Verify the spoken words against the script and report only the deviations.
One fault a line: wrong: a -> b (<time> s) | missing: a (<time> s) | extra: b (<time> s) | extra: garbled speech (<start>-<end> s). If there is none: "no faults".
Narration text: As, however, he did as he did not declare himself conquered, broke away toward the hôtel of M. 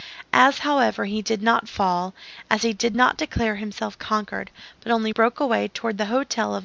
extra: not fall (1.4 s)
extra: but only (4.8 s)